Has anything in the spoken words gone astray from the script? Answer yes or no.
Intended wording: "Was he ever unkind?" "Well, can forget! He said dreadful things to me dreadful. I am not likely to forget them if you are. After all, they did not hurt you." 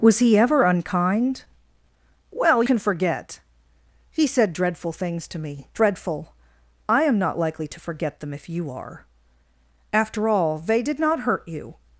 no